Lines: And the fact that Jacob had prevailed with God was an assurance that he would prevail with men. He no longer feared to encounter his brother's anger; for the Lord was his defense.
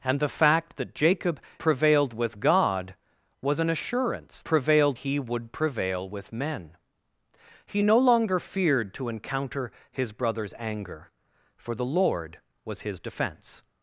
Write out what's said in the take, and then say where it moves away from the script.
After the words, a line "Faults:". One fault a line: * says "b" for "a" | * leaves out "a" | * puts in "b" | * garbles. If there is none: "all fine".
And the fact that Jacob prevailed with God was an assurance prevailed he would prevail with men. He no longer feared to encounter his brother's anger; for the Lord was his defense.
Faults:
* leaves out "had"
* says "prevailed" for "that"